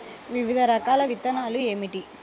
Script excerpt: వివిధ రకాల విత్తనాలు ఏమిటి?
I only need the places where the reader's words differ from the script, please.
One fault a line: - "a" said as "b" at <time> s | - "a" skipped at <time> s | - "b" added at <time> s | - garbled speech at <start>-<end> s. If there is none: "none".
none